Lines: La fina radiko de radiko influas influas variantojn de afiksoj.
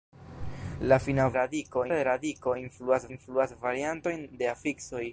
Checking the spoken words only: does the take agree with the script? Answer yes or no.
yes